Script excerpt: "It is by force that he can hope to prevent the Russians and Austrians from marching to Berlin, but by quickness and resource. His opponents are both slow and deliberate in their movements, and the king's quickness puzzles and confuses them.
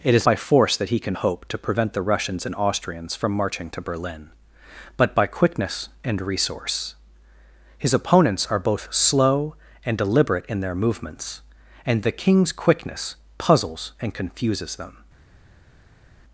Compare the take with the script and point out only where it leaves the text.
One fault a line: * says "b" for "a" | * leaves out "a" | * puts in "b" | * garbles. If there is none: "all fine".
all fine